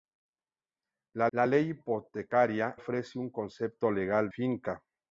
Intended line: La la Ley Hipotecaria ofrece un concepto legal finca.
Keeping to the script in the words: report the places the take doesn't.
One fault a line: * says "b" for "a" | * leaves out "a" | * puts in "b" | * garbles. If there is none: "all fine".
all fine